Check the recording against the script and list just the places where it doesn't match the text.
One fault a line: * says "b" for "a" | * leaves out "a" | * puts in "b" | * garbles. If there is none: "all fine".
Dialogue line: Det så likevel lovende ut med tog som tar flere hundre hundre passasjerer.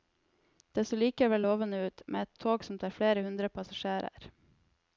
* puts in "et"
* leaves out "hundre"